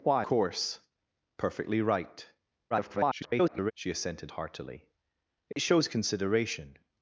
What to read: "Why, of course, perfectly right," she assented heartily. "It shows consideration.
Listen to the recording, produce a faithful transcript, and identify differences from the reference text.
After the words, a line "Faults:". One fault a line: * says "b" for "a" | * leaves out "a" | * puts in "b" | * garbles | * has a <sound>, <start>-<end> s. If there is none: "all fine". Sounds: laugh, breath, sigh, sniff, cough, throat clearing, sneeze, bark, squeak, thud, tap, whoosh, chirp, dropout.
"Why, course, perfectly right," [garbled] she assented heartily. "It shows consideration.
Faults:
* leaves out "of"
* garbles
* has a dropout, 5.5-5.6 s